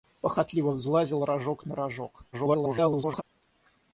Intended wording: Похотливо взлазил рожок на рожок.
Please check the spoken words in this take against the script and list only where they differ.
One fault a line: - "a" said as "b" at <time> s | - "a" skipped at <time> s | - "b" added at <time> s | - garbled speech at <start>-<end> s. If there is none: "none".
- garbled speech at 2.3-3.2 s